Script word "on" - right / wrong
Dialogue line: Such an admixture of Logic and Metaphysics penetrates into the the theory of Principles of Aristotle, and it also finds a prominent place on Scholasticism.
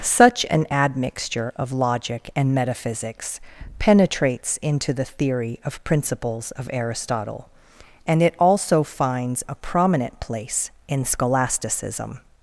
wrong